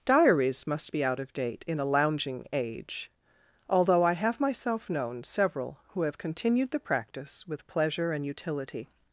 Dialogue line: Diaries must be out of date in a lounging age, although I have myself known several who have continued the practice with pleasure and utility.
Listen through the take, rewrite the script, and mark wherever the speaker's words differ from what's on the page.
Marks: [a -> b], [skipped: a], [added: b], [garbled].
Diaries must be out of date in a lounging age, although I have myself known several who have continued the practice with pleasure and utility.